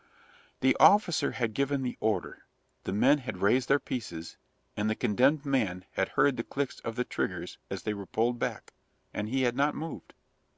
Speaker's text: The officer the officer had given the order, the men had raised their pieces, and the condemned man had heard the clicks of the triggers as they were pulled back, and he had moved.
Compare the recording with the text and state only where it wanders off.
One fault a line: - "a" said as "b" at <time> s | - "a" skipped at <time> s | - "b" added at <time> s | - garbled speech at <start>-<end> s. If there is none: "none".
- "the officer" skipped at 1.3 s
- "not" added at 9.6 s